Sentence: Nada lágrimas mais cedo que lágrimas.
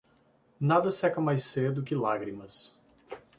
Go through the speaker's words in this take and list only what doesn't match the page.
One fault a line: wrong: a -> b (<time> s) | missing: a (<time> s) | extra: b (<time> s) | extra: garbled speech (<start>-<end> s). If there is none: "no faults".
wrong: lágrimas -> seca (0.9 s)